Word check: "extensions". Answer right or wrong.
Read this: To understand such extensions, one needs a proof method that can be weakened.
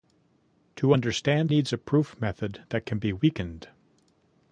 wrong